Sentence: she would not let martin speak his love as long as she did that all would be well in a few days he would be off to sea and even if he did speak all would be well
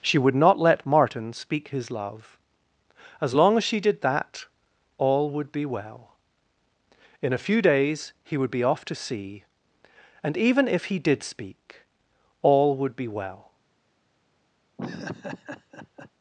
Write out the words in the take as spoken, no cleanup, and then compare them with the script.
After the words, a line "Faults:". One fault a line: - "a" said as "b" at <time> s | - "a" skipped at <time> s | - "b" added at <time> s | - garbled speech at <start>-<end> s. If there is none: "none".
she would not let martin speak his love as long as she did that all would be well in a few days he would be off to sea and even if he did speak all would be well
Faults:
none